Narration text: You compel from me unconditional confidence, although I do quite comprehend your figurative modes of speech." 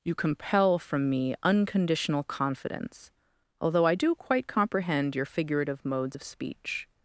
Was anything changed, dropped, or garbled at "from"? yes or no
no